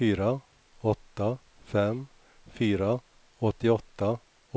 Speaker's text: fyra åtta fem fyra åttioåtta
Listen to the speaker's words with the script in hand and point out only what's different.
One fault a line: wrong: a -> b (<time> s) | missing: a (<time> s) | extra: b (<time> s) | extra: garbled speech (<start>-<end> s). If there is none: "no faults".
no faults